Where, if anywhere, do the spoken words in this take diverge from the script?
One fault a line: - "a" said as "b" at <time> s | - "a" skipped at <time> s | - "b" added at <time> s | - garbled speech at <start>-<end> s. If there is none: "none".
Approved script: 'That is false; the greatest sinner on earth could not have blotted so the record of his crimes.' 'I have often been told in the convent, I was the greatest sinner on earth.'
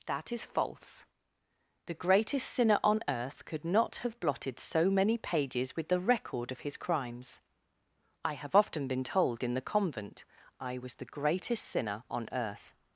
- "many pages with" added at 4.9 s